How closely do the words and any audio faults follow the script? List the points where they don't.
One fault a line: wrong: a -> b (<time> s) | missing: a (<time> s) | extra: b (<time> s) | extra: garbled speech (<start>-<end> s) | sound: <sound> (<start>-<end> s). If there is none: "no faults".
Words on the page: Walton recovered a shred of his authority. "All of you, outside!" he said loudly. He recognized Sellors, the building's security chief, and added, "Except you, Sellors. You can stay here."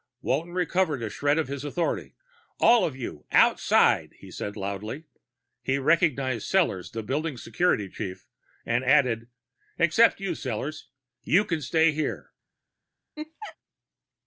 sound: laugh (13.2-13.6 s)